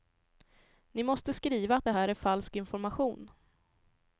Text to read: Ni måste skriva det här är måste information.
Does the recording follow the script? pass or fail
fail